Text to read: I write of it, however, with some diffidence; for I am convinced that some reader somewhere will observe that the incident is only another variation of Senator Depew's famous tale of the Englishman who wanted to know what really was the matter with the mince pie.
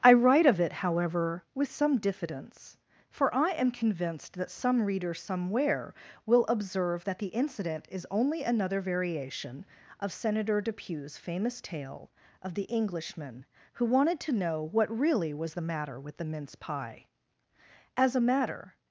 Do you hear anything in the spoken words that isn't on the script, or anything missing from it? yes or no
yes